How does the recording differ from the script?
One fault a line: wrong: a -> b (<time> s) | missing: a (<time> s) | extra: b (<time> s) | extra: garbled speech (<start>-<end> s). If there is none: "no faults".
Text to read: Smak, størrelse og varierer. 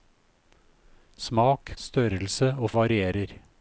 no faults